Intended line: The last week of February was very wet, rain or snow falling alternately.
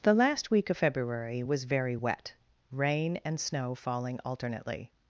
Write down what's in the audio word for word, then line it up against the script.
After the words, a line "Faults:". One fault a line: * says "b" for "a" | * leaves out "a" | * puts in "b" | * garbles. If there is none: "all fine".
The last week of February was very wet, rain and snow falling alternately.
Faults:
* says "and" for "or"